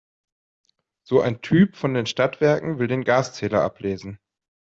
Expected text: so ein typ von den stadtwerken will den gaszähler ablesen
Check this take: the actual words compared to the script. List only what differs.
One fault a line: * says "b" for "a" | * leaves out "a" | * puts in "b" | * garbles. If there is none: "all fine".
all fine